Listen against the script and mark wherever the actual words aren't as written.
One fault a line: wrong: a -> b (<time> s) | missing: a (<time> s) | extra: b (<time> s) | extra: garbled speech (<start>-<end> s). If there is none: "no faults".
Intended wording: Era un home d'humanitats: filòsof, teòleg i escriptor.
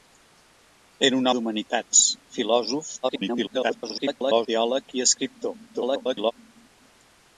missing: home (1.3 s)
extra: garbled speech (3.0-4.5 s)
extra: garbled speech (5.7-6.3 s)